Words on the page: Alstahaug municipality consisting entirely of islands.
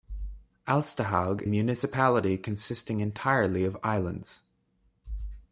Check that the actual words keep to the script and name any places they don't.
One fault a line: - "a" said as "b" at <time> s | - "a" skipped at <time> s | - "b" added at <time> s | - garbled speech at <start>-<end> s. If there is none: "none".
none